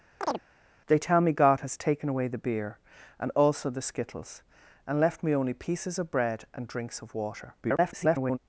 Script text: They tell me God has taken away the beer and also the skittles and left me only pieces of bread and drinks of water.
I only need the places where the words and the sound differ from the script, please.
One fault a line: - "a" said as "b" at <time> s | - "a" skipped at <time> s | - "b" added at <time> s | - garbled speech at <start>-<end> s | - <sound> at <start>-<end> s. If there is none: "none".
- chirp at 0.2-0.4 s
- garbled speech at 7.6-8.4 s